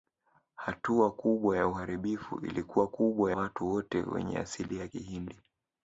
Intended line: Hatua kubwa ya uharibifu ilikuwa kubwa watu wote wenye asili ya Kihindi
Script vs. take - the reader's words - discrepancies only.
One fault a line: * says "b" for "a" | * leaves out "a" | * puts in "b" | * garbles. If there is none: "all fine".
all fine